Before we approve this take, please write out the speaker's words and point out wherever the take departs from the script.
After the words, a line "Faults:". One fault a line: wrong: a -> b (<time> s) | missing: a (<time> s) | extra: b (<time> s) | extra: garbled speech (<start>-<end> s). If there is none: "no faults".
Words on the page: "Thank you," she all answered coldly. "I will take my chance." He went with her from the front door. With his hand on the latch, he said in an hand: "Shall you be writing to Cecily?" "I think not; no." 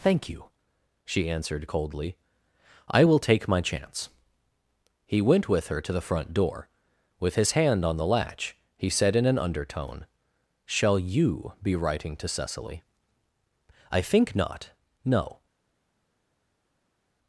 "Thank you," she answered coldly. "I will take my chance." He went with her to the front door. With his hand on the latch, he said in an undertone: "Shall you be writing to Cecily?" "I think not; no."
Faults:
missing: all (1.3 s)
wrong: from -> to (5.8 s)
wrong: hand -> undertone (9.4 s)